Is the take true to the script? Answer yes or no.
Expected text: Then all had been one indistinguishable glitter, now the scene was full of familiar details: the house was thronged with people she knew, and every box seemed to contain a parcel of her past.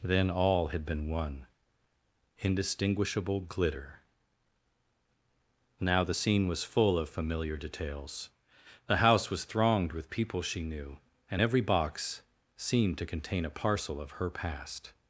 yes